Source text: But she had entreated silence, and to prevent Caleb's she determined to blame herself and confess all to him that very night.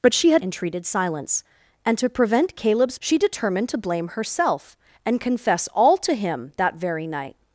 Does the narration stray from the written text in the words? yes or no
no